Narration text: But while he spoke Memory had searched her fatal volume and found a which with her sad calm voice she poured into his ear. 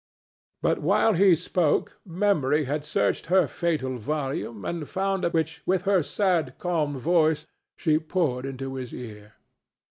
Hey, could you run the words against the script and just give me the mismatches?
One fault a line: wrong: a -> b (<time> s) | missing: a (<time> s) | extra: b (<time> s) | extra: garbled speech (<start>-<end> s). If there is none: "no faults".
no faults